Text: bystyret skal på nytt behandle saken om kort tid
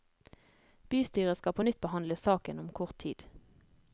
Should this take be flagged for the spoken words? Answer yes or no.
no